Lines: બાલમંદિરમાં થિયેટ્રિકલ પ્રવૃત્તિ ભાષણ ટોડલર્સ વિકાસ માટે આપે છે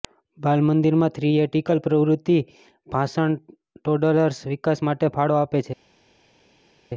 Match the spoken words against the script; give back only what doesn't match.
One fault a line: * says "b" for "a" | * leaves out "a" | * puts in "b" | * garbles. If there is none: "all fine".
* puts in "ફાળો"